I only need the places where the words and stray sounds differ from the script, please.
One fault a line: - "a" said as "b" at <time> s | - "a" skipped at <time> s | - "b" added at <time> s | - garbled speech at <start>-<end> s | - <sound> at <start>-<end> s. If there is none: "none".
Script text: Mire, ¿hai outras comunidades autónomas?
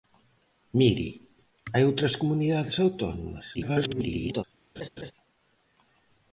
- garbled speech at 3.5-4.4 s
- laugh at 4.8-5.1 s